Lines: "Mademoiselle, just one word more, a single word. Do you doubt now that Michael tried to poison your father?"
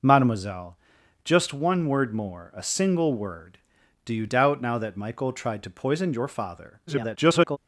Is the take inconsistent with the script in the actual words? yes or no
yes